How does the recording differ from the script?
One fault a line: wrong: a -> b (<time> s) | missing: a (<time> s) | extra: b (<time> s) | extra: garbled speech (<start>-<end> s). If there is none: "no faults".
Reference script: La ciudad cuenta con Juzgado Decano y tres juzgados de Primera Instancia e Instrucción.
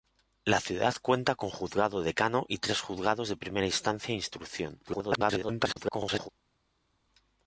extra: garbled speech (4.9-6.3 s)